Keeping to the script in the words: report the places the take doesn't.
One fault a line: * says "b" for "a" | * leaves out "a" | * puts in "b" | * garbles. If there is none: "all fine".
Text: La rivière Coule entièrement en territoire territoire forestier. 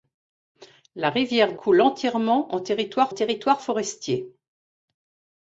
all fine